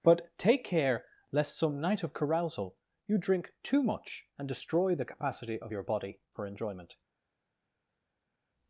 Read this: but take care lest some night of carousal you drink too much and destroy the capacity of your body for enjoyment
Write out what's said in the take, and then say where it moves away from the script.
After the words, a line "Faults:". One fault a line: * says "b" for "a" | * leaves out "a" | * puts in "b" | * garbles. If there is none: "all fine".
but take care lest some night of carousal you drink too much and destroy the capacity of your body for enjoyment
Faults:
all fine